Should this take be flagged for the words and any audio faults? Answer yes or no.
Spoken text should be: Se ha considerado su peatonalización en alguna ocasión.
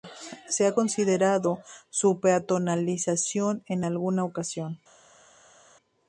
no